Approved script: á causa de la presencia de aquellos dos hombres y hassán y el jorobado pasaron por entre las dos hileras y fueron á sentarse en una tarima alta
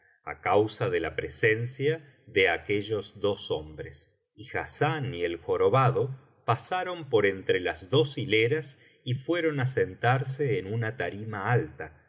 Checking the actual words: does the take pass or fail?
pass